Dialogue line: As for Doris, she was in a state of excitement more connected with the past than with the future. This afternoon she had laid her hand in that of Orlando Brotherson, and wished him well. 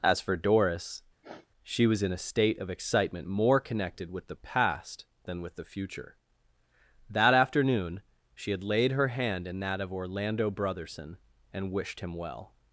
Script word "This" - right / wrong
wrong